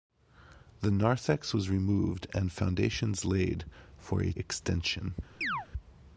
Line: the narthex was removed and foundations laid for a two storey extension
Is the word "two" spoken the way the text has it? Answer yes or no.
no